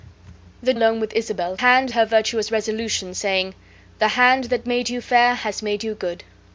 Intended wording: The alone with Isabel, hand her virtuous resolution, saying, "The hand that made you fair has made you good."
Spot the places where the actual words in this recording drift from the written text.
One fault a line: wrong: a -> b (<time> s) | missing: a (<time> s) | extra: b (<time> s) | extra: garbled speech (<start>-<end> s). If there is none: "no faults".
no faults